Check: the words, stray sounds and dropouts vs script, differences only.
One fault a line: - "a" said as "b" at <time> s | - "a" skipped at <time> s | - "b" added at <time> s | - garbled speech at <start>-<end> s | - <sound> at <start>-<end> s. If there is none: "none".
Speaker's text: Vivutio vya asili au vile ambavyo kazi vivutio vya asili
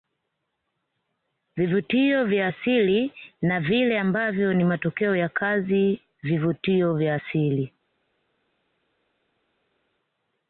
- "au" said as "na" at 3.4 s
- "ni matokeo ya" added at 4.5 s